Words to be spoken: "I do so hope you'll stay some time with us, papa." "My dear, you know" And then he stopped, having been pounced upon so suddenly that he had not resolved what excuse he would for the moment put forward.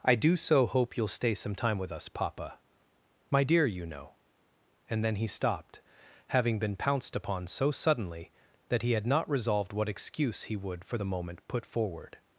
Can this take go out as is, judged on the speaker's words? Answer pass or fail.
pass